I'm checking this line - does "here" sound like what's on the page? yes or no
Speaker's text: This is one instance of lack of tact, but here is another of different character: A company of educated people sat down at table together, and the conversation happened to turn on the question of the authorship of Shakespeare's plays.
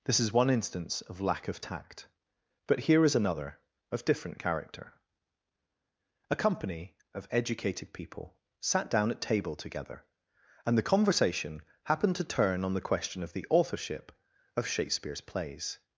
yes